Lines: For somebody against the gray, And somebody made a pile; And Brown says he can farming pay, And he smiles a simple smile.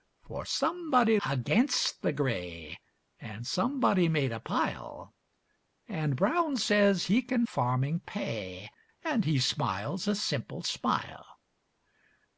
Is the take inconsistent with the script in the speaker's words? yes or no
no